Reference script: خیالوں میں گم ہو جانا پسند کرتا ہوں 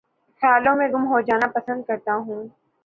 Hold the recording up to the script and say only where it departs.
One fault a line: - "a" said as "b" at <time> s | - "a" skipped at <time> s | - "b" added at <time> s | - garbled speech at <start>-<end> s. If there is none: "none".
none